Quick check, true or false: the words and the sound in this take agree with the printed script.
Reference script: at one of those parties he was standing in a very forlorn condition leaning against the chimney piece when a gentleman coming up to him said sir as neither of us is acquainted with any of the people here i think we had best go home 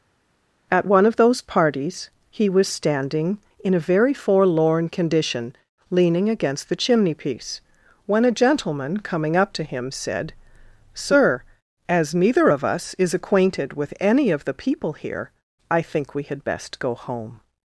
true